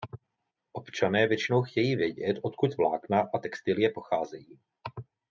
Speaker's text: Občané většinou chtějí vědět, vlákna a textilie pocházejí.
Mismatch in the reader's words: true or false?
true